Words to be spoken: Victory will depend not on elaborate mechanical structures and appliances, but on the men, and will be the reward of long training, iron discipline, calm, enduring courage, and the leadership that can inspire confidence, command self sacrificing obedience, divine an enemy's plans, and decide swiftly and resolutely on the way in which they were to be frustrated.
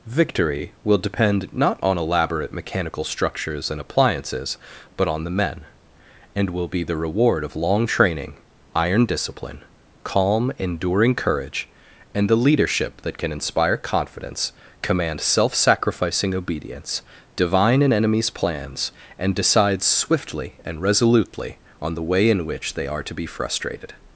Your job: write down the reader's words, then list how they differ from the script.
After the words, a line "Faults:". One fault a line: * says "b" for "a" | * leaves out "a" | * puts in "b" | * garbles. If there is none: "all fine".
Victory will depend not on elaborate mechanical structures and appliances, but on the men, and will be the reward of long training, iron discipline, calm, enduring courage, and the leadership that can inspire confidence, command self sacrificing obedience, divine an enemy's plans, and decide swiftly and resolutely on the way in which they are to be frustrated.
Faults:
* says "are" for "were"